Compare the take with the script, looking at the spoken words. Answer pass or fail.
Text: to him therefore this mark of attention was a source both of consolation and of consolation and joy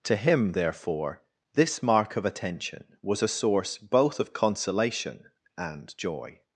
fail